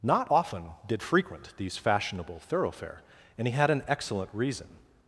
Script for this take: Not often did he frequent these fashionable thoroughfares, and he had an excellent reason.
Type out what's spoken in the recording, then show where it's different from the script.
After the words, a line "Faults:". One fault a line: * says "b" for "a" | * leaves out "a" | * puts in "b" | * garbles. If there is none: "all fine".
Not often did frequent these fashionable thoroughfare, and he had an excellent reason.
Faults:
* leaves out "he"
* says "thoroughfare" for "thoroughfares"